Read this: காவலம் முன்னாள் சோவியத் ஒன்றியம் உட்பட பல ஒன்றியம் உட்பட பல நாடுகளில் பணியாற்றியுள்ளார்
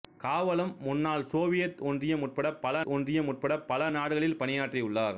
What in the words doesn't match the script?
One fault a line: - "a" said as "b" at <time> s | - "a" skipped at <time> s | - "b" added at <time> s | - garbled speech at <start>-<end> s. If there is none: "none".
none